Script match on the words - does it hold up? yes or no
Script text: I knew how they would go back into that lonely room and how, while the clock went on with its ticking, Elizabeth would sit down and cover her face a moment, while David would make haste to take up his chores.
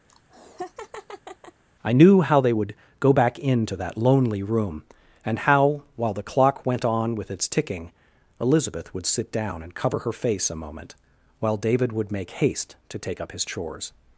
yes